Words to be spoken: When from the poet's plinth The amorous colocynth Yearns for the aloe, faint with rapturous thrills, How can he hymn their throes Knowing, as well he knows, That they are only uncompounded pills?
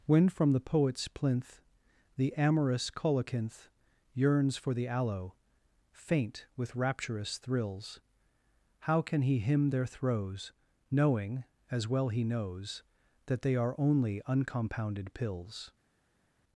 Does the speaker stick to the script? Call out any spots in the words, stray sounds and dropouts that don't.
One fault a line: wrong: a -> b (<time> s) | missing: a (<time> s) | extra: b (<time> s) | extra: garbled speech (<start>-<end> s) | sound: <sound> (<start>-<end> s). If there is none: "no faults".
no faults